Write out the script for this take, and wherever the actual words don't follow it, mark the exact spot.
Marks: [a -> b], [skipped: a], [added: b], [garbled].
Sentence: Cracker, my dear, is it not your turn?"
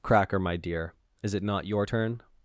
Cracker, my dear, is it not your turn?"